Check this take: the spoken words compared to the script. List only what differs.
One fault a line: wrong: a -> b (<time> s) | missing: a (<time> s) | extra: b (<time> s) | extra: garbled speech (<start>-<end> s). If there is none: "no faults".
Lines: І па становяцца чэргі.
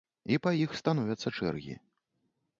extra: іх (0.6 s)